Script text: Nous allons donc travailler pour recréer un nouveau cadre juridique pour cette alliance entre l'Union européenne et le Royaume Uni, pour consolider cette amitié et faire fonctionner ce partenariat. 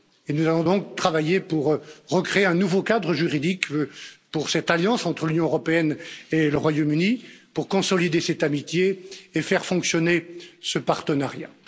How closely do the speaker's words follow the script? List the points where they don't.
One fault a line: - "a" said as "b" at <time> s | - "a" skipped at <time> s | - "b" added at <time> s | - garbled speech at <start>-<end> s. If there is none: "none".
none